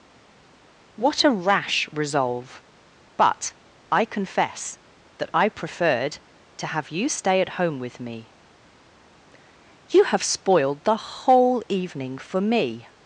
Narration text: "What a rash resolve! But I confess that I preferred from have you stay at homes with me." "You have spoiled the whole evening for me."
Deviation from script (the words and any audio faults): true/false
true